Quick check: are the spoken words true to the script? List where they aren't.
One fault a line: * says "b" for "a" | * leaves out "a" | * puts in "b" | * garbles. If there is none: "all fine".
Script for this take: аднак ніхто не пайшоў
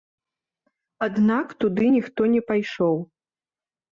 * puts in "туды"